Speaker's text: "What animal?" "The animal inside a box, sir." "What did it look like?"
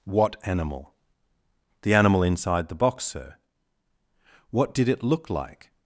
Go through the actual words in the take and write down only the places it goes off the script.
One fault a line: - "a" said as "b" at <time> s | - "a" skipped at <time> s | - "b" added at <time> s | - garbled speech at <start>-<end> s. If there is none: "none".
- "a" said as "the" at 2.7 s